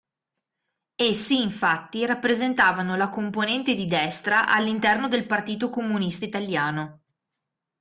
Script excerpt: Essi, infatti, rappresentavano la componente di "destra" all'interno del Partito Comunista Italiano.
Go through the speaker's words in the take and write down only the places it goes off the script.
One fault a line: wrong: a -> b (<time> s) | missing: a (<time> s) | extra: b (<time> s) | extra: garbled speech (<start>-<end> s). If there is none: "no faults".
no faults